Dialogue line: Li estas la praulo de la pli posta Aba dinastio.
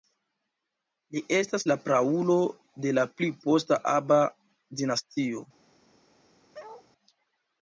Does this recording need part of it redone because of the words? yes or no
no